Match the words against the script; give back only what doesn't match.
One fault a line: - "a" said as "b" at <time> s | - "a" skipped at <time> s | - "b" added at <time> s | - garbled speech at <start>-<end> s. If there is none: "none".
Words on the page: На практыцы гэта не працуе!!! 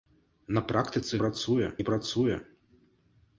- "гэта" said as "працуе" at 1.2 s